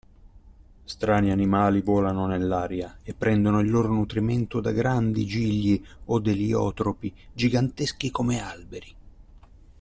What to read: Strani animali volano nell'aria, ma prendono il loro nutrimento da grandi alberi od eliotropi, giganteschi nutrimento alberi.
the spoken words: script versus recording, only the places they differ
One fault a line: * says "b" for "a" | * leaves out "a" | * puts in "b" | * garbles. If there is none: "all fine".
* says "e" for "ma"
* says "gigli" for "alberi"
* says "come" for "nutrimento"